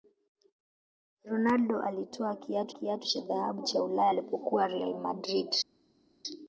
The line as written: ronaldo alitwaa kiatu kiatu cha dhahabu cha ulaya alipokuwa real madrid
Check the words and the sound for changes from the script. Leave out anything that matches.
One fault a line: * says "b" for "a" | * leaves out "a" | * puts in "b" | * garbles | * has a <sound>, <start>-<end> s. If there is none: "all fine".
all fine